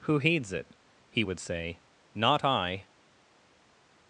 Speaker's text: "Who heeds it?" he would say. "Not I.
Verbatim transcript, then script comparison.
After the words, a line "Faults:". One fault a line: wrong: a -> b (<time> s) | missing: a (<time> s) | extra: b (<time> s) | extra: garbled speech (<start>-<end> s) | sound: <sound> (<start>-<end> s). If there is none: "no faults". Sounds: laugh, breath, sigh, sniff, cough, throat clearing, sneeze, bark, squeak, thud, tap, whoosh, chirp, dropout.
"Who heeds it?" he would say. "Not I.
Faults:
no faults